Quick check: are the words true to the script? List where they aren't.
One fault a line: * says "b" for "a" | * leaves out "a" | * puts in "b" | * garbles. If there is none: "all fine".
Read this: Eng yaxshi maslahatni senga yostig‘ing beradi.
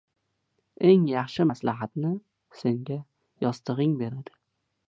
all fine